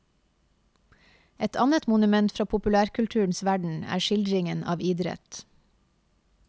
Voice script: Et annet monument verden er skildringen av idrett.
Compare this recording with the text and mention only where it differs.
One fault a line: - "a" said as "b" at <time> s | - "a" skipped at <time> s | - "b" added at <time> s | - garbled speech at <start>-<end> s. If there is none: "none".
- "fra populærkulturens" added at 2.4 s